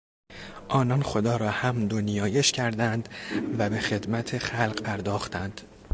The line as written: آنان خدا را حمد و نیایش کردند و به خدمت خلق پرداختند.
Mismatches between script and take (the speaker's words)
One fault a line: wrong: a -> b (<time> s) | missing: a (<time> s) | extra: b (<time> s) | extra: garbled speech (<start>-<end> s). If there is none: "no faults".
no faults